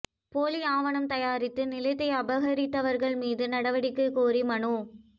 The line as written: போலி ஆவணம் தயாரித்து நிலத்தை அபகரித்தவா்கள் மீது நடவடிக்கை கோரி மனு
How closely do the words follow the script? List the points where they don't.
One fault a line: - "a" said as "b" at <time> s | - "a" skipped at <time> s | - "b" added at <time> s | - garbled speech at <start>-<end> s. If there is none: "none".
none